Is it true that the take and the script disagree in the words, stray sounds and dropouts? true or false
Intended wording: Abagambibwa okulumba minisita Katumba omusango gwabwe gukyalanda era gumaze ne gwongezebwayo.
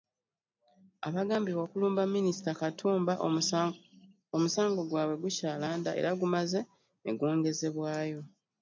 false